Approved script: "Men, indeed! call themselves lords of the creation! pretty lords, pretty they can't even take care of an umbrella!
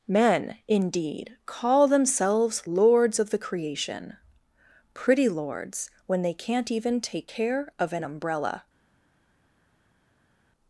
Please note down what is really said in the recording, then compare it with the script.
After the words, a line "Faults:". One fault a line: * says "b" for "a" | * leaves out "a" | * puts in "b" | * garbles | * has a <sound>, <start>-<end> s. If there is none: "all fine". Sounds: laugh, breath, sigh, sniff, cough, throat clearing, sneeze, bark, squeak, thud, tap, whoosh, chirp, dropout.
"Men, indeed! call themselves lords of the creation! pretty lords, when they can't even take care of an umbrella!
Faults:
* says "when" for "pretty"